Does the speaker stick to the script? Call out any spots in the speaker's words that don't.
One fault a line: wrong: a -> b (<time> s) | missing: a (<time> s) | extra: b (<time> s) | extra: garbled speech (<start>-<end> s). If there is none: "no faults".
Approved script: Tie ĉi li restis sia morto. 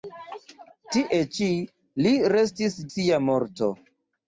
no faults